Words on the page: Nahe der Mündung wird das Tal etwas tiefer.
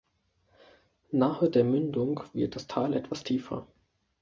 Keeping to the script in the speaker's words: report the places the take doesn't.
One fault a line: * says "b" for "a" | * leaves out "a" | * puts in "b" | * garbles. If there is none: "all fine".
all fine